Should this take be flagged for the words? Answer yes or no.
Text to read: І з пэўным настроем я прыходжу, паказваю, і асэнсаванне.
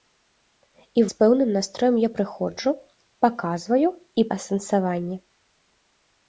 no